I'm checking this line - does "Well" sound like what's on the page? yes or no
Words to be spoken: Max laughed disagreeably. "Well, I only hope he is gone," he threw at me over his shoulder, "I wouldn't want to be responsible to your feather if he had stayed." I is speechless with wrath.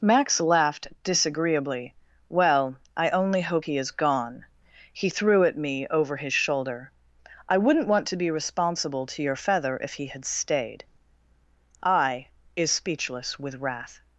yes